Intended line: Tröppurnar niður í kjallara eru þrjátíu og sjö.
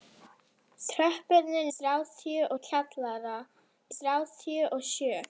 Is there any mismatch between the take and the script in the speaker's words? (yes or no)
yes